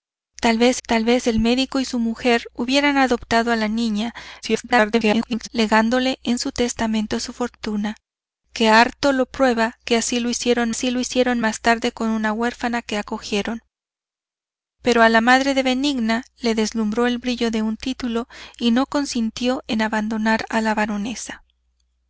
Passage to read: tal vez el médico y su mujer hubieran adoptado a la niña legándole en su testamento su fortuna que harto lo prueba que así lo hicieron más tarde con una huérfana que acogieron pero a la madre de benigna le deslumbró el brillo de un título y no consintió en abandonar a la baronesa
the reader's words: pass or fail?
fail